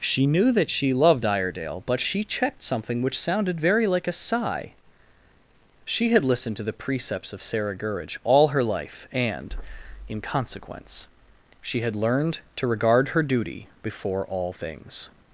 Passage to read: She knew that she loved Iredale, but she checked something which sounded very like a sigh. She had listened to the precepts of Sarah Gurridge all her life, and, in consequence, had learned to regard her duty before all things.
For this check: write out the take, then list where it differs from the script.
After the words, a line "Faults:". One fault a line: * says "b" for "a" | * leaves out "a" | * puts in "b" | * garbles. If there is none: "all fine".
She knew that she loved Iredale, but she checked something which sounded very like a sigh. She had listened to the precepts of Sarah Gurridge all her life, and, in consequence, she had learned to regard her duty before all things.
Faults:
* puts in "she"